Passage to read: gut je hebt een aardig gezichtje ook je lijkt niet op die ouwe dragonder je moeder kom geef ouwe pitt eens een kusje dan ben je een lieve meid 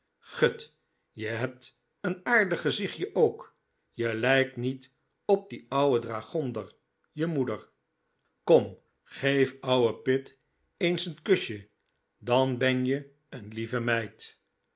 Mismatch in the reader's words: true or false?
false